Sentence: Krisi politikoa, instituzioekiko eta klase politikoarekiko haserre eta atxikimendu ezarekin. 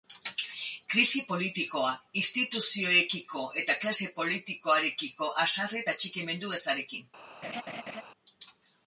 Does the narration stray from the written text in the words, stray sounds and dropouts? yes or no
yes